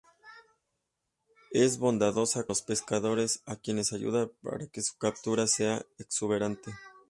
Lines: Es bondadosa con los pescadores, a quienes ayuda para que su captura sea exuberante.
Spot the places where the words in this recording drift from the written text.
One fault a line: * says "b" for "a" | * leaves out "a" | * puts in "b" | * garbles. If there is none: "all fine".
* leaves out "con"